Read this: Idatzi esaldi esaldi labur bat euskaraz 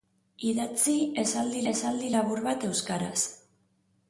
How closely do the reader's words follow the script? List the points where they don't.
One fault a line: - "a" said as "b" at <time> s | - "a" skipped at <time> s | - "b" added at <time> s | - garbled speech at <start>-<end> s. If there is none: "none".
none